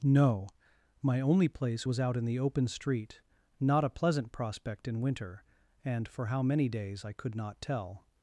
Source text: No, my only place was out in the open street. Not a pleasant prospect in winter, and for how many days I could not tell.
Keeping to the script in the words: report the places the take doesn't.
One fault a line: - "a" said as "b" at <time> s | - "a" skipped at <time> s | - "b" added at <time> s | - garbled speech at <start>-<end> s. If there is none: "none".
none